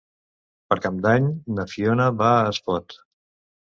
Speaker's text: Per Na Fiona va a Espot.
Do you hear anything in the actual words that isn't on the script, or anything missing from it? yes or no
yes